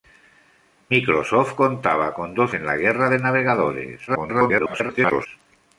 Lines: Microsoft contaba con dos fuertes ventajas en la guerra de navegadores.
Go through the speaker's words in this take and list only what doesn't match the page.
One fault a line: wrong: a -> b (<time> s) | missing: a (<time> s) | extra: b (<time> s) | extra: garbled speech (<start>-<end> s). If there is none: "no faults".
missing: fuertes ventajas (2.5 s)
extra: garbled speech (4.1-5.3 s)